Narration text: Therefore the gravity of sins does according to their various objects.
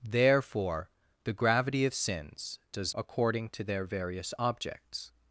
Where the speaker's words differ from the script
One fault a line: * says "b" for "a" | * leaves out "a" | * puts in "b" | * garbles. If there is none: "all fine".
all fine